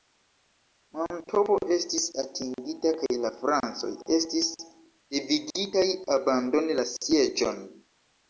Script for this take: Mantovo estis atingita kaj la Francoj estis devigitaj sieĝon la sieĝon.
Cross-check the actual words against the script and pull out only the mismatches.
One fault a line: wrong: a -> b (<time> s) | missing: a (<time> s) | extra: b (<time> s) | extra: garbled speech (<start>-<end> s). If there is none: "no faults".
wrong: sieĝon -> abandoni (6.2 s)